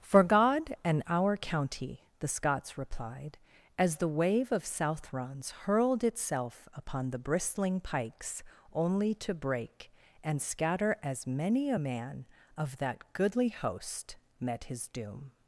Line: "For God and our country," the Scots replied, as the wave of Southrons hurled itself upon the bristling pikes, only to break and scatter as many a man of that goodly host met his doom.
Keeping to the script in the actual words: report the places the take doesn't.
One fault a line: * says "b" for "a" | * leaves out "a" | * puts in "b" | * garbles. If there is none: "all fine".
* says "county" for "country"